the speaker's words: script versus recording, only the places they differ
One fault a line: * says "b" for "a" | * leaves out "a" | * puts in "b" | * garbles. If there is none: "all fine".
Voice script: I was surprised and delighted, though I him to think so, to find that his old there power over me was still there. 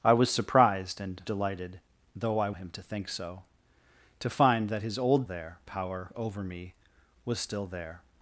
all fine